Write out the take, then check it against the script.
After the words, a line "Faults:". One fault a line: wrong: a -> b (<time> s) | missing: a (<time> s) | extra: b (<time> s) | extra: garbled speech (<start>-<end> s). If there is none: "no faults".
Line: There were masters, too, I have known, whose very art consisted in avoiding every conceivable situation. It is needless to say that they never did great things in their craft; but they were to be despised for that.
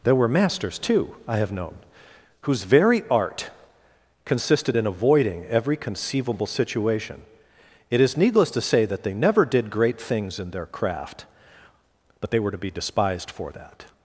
There were masters, too, I have known, whose very art consisted in avoiding every conceivable situation. It is needless to say that they never did great things in their craft; but they were to be despised for that.
Faults:
no faults